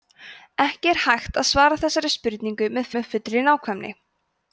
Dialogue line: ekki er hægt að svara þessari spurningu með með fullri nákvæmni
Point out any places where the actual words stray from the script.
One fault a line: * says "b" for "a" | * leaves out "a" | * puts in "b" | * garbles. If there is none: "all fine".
all fine